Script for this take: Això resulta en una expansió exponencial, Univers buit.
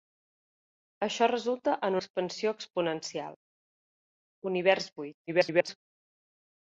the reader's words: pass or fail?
fail